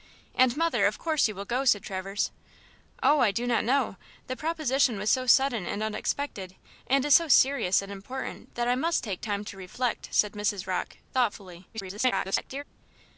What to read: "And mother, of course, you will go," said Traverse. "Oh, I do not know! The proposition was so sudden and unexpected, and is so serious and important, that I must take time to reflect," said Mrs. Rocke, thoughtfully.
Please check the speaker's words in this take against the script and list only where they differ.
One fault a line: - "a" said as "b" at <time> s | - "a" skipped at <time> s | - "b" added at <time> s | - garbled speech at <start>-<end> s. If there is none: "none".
- garbled speech at 11.7-12.6 s